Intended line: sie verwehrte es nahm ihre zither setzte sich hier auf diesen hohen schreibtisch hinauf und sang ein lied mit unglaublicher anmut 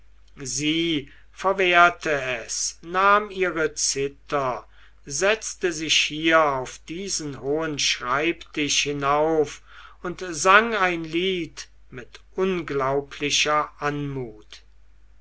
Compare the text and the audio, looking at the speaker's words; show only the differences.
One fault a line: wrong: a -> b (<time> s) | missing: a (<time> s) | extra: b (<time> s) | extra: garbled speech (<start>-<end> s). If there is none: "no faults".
no faults